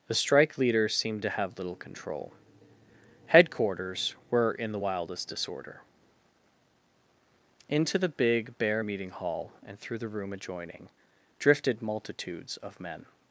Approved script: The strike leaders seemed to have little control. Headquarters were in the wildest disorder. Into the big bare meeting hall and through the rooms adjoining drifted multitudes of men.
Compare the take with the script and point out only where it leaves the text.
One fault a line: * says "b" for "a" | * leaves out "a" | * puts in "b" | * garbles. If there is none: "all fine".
* says "room" for "rooms"